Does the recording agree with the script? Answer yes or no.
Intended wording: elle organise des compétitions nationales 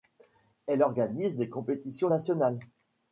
yes